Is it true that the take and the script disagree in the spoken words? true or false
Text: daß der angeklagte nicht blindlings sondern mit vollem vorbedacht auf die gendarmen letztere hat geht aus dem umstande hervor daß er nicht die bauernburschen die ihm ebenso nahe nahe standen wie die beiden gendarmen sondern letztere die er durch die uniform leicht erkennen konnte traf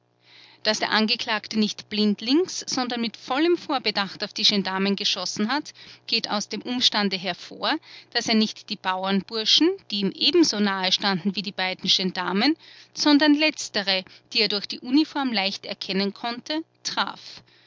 true